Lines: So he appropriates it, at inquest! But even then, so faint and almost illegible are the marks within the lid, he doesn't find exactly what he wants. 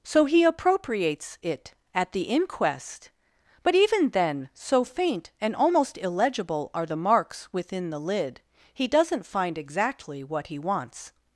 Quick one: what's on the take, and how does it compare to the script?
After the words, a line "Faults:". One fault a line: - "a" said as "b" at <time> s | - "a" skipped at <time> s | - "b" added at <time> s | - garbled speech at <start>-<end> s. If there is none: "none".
So he appropriates it, at the inquest! But even then, so faint and almost illegible are the marks within the lid, he doesn't find exactly what he wants.
Faults:
- "the" added at 2.1 s